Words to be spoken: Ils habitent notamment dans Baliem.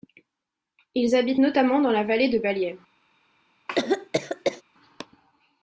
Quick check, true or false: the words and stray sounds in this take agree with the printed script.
false